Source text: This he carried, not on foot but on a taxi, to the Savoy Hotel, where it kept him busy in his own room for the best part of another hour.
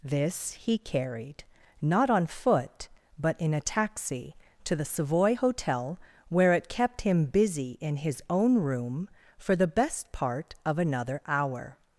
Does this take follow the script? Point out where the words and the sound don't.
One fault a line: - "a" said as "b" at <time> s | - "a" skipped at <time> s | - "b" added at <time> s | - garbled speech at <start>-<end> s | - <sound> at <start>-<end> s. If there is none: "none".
- "on" said as "in" at 3.4 s